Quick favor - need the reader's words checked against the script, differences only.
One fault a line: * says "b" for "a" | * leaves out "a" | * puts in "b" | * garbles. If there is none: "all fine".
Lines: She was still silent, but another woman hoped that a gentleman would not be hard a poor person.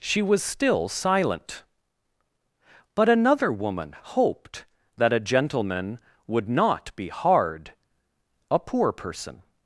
all fine